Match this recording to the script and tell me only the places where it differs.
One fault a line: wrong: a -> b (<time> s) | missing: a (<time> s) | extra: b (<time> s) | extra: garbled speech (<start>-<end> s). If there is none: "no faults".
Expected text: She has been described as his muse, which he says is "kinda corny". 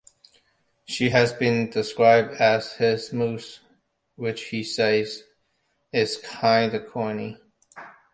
no faults